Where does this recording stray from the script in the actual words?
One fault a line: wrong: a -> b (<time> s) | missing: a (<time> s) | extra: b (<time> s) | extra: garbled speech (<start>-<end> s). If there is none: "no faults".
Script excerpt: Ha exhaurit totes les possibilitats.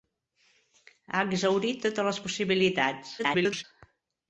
extra: garbled speech (3.2-3.6 s)